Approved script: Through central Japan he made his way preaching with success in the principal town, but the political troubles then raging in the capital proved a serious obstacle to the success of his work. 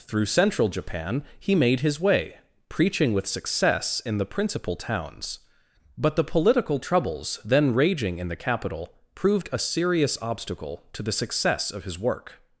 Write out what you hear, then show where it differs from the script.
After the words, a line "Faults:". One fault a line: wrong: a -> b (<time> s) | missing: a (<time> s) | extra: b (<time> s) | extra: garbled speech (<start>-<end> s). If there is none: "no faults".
Through central Japan he made his way preaching with success in the principal towns, but the political troubles then raging in the capital proved a serious obstacle to the success of his work.
Faults:
wrong: town -> towns (4.8 s)